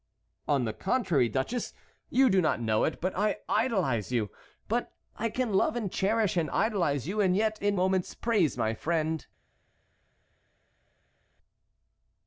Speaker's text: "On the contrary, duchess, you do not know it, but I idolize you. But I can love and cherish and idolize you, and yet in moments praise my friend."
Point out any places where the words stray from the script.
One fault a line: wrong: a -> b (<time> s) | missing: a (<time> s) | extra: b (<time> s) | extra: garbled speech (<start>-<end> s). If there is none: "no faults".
no faults